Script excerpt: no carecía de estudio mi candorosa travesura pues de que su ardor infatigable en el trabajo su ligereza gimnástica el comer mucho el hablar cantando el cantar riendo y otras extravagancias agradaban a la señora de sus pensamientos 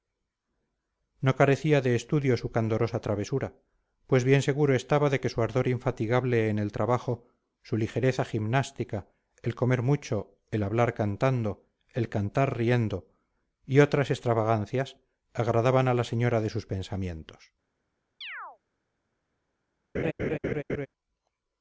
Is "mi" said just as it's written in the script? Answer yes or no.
no